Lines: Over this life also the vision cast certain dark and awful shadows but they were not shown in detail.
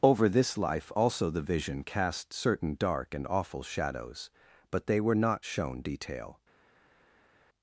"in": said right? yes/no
no